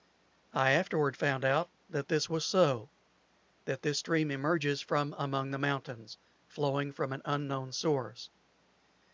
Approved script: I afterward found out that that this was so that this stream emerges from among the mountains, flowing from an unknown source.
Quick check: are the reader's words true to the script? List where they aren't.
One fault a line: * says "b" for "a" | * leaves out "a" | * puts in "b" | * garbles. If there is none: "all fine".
* leaves out "that"